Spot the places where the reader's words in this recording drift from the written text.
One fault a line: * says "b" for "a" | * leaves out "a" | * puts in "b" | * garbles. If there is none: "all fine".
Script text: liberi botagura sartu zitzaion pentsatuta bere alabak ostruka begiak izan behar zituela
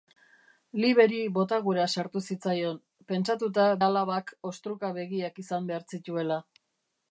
* leaves out "bere"